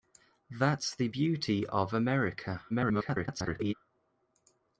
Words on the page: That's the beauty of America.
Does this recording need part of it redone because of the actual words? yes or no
yes